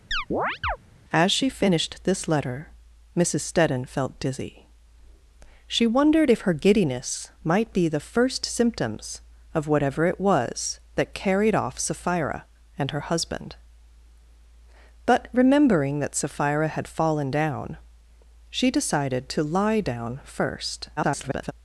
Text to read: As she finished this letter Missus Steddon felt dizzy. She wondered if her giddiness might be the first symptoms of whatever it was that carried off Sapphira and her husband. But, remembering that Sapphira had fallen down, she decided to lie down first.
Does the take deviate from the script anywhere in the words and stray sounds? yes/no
yes